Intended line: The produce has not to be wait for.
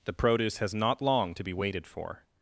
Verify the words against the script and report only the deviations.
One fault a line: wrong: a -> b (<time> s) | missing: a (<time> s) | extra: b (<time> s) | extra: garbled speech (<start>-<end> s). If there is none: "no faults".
extra: long (1.0 s)
wrong: wait -> waited (1.5 s)